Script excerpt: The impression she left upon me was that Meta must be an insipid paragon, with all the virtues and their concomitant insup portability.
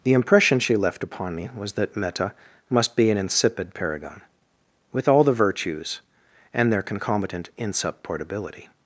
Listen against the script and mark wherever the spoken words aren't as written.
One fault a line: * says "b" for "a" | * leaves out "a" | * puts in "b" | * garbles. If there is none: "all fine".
all fine